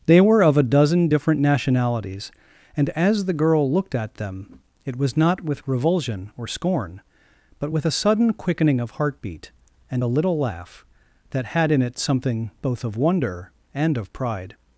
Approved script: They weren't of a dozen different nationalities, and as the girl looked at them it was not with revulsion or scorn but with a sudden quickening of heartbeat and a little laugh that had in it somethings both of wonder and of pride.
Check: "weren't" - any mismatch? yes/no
yes